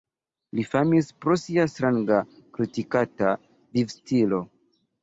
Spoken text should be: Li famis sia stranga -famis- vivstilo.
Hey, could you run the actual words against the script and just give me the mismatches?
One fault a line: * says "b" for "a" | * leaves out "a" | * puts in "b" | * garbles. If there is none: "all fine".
* puts in "pro"
* says "kritikata" for "famis"